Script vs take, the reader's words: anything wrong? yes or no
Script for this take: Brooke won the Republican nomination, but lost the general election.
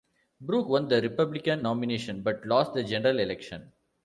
no